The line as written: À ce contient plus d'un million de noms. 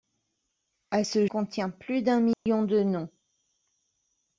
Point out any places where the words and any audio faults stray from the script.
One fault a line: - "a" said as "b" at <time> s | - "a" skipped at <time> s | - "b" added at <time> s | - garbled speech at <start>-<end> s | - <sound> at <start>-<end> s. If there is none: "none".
- dropout at 2.3-2.5 s